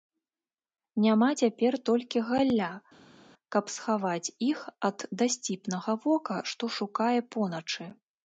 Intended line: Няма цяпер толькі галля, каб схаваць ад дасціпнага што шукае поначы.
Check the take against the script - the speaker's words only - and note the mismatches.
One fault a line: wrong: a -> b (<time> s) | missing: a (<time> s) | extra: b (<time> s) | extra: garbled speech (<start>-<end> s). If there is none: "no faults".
extra: іх (4.5 s)
extra: вока (6.1 s)